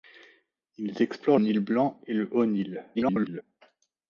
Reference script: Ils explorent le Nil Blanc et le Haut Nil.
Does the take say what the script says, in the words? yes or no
no